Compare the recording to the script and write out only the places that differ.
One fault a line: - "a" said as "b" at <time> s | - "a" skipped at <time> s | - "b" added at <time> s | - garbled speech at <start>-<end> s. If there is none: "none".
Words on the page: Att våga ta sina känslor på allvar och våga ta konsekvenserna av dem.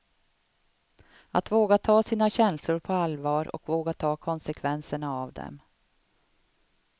none